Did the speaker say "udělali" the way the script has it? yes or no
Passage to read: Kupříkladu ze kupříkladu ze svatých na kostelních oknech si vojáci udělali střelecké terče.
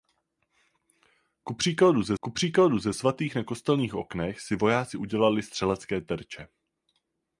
yes